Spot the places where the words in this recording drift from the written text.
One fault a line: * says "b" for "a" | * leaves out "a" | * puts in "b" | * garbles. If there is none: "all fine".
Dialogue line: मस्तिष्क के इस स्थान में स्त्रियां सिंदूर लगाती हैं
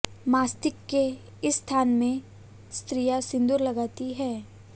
all fine